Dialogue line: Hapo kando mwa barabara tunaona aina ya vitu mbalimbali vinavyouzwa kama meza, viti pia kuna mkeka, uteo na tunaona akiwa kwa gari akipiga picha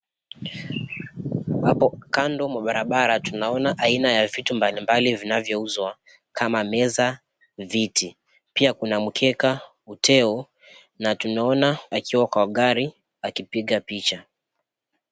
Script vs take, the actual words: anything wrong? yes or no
no